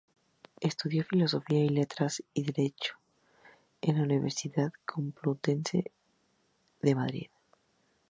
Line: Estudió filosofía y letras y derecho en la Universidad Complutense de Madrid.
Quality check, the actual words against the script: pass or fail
pass